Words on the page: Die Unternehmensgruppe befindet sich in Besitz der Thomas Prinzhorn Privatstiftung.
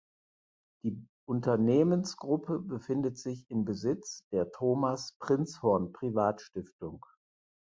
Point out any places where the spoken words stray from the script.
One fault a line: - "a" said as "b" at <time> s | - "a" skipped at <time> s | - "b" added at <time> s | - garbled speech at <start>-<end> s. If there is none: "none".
none